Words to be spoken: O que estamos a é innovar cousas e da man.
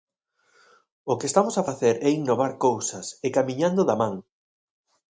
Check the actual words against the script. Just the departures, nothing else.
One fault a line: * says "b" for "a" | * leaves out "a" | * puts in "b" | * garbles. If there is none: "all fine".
* puts in "facer"
* puts in "camiñando"